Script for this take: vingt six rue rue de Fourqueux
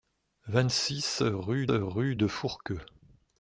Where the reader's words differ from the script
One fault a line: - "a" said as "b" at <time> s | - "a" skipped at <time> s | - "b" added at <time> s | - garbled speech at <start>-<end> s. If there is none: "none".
none